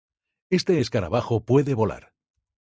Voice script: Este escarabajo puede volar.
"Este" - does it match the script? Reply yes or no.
yes